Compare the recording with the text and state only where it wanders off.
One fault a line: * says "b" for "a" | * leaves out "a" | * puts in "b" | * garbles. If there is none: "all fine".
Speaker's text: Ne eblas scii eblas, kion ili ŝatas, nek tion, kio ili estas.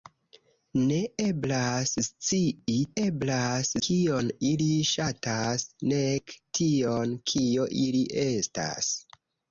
all fine